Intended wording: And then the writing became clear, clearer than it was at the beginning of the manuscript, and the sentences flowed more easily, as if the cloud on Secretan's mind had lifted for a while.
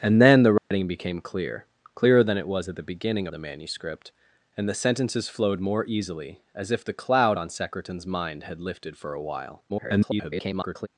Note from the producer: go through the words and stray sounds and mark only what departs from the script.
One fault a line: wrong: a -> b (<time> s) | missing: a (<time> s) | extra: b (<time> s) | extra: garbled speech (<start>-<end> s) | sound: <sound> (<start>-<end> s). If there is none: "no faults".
sound: dropout (0.6-0.7 s)
missing: of (3.3 s)
extra: garbled speech (9.7-10.9 s)